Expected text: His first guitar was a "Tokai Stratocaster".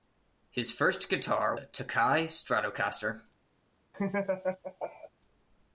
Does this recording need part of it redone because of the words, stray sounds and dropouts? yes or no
yes